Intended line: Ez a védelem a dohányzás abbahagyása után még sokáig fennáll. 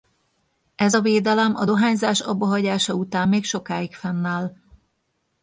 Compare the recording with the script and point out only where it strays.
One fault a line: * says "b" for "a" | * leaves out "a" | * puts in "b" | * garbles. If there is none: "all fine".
all fine